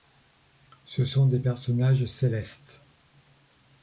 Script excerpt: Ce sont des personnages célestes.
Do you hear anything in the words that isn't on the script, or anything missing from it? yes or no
no